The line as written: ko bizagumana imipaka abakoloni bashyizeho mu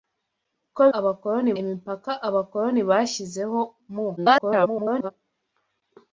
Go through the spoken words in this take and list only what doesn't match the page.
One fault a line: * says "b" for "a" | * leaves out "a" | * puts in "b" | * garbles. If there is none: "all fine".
* says "abakoloni" for "bizagumana"
* garbles